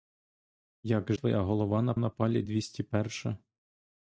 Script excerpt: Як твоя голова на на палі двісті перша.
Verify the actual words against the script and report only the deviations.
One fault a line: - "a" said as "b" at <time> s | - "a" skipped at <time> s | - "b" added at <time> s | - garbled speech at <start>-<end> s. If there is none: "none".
none